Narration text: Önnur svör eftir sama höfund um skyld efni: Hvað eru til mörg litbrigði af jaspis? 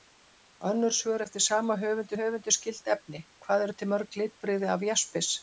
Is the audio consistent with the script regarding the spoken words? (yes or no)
no